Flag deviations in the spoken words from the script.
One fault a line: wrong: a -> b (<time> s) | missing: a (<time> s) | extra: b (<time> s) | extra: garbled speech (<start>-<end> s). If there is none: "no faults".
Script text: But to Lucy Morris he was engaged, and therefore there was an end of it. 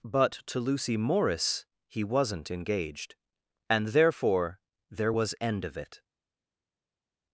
wrong: was -> wasn't (2.0 s)
missing: an (5.3 s)